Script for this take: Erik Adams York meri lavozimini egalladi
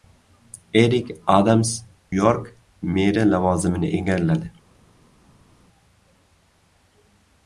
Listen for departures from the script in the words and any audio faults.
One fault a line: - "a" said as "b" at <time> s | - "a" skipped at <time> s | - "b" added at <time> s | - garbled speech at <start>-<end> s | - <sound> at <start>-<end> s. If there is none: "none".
none